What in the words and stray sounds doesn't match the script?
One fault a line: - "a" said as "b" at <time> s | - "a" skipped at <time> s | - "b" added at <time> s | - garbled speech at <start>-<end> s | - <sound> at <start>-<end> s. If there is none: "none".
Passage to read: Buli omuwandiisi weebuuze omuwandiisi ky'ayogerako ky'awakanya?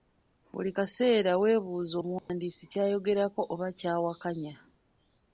- "omuwandiisi" said as "kaseera" at 0.8 s
- dropout at 2.2-2.3 s
- "oba" added at 3.5 s